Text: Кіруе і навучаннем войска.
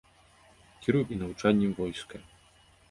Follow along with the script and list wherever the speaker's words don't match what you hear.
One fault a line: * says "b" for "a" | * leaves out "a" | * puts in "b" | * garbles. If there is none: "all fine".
all fine